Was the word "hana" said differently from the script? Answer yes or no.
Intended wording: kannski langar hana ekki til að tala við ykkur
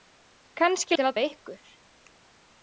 yes